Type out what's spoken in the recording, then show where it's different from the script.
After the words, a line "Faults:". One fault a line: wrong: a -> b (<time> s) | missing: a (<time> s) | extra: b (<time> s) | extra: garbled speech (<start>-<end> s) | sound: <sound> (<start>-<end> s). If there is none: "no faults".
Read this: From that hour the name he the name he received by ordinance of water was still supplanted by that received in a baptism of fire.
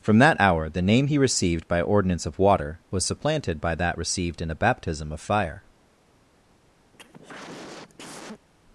From that hour the name he received by ordinance of water was supplanted by that received in a baptism of fire.
Faults:
missing: the name he (1.2 s)
missing: still (3.0 s)
sound: cough (6.9-8.5 s)